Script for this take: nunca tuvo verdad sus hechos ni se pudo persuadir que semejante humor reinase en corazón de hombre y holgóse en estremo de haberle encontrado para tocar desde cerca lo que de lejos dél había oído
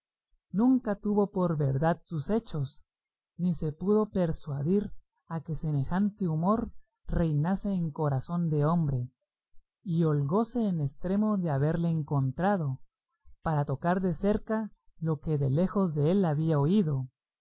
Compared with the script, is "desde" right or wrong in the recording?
wrong